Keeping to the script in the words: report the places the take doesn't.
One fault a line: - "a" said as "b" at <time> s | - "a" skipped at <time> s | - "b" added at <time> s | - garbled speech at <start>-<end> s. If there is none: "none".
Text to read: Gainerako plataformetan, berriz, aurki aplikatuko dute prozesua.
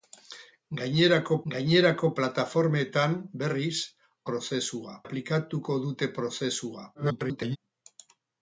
- "gainerako" added at 1.5 s
- "aurki" said as "prozesua" at 4.3 s
- garbled speech at 6.9-7.6 s